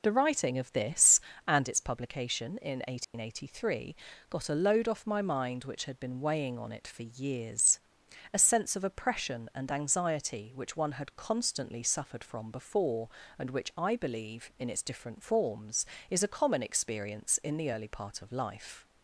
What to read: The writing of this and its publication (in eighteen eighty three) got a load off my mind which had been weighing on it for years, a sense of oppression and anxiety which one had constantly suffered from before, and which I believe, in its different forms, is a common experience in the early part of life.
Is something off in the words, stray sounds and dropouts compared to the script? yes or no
yes